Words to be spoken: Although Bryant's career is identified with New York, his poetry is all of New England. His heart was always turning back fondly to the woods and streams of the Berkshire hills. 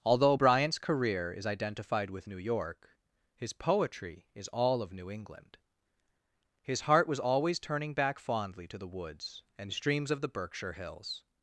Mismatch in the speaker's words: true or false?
false